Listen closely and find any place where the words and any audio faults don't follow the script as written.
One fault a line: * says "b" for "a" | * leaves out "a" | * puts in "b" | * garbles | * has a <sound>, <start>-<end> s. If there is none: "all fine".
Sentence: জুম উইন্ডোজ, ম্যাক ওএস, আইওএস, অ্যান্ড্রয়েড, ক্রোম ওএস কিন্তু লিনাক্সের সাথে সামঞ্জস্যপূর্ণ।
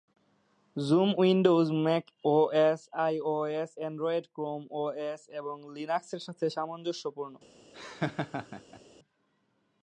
* says "এবং" for "কিন্তু"
* has a laugh, 7.7-8.8 s